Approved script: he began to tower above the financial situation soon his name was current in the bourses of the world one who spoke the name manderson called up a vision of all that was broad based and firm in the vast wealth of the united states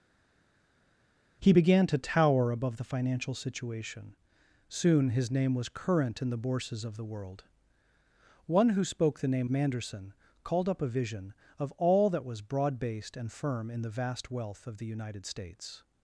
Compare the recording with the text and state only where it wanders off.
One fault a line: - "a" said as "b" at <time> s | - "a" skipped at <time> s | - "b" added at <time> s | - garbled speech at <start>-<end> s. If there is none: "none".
none